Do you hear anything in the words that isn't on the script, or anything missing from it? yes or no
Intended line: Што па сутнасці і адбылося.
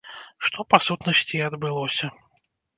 no